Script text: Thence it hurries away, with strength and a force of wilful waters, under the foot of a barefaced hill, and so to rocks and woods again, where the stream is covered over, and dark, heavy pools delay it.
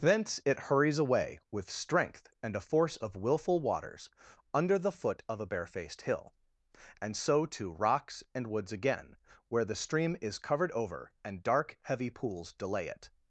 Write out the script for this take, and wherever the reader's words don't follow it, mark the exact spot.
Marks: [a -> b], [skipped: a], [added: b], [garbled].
Thence it hurries away, with strength and a force of wilful waters, under the foot of a barefaced hill, and so to rocks and woods again, where the stream is covered over, and dark, heavy pools delay it.